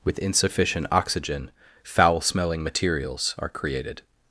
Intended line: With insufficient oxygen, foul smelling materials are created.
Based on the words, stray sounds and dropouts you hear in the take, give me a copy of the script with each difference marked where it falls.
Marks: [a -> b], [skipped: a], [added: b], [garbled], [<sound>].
With insufficient oxygen, foul smelling materials are created.